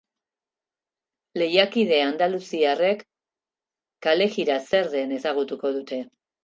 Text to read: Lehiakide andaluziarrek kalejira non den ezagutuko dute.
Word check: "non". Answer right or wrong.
wrong